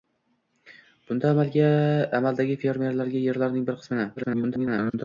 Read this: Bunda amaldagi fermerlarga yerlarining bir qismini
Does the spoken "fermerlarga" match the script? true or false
true